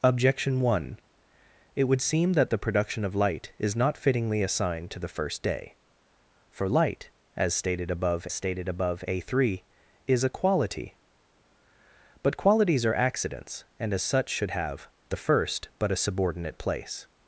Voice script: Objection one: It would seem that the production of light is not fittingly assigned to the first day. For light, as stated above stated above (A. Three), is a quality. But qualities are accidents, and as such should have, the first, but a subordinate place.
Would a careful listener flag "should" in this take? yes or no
no